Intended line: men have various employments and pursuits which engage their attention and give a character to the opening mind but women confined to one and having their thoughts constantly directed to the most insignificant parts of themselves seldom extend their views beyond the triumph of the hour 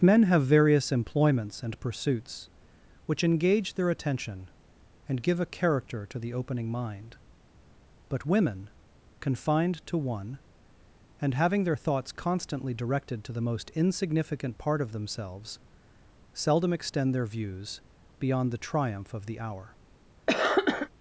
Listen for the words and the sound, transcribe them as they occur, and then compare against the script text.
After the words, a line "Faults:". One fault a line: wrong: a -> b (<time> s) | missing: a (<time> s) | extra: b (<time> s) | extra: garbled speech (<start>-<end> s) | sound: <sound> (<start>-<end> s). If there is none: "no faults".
men have various employments and pursuits which engage their attention and give a character to the opening mind but women confined to one and having their thoughts constantly directed to the most insignificant part of themselves seldom extend their views beyond the triumph of the hour
Faults:
wrong: parts -> part (14.6 s)
sound: cough (20.3-20.9 s)